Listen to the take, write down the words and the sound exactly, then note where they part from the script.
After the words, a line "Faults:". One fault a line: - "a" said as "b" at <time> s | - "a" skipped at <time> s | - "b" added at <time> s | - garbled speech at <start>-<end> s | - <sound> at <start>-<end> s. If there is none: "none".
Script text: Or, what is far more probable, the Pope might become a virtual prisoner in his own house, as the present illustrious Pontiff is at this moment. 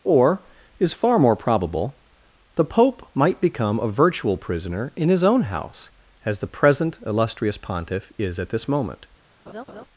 Or, is far more probable, the Pope might become a virtual prisoner in his own house, as the present illustrious Pontiff is at this moment.
Faults:
- "what" skipped at 0.4 s
- laugh at 9.5-9.9 s